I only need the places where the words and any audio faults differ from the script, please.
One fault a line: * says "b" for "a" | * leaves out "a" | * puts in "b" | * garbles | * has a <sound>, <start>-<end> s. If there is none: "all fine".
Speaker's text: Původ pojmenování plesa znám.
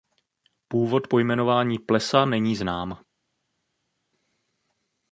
* puts in "není"